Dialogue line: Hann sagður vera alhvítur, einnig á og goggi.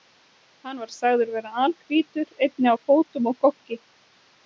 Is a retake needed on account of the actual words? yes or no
yes